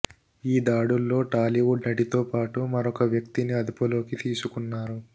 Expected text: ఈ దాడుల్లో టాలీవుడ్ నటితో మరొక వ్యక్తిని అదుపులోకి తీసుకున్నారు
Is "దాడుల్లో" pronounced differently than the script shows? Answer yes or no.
no